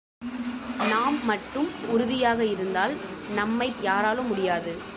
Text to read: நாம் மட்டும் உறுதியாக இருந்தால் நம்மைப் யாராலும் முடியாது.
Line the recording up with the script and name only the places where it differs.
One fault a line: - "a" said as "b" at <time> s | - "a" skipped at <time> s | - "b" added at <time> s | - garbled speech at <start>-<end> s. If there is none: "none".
none